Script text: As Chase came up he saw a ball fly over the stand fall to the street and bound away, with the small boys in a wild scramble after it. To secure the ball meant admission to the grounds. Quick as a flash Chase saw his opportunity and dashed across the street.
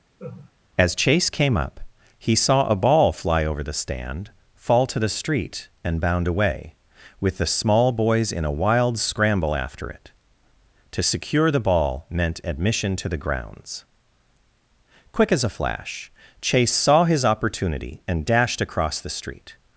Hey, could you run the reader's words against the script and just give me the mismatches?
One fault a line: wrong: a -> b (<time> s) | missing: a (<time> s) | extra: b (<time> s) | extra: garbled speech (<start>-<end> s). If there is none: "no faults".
no faults